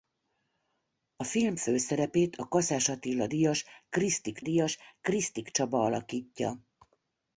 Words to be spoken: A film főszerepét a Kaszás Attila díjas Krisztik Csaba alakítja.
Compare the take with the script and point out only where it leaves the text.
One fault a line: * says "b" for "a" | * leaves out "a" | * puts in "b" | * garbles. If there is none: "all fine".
* puts in "díjas Krisztik"